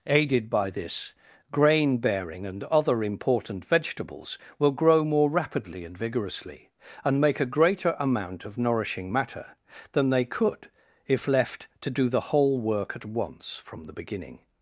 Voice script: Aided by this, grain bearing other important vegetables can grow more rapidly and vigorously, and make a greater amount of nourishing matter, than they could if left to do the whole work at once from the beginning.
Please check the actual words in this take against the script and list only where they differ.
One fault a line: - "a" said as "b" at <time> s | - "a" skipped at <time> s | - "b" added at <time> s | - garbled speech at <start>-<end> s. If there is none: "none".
- "and" added at 2.5 s
- "can" said as "will" at 4.6 s